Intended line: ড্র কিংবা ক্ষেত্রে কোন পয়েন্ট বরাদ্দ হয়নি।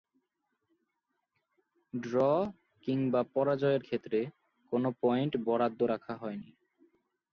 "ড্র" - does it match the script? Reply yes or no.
yes